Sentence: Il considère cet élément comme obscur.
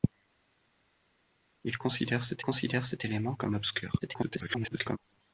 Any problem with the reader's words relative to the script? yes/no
yes